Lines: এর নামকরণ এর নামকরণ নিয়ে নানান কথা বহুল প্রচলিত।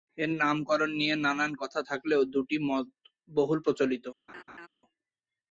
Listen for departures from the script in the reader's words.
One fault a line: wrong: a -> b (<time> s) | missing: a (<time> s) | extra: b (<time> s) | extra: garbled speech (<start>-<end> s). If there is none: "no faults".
missing: এর নামকরণ (0.9 s)
extra: থাকলেও দুটি মত (1.9 s)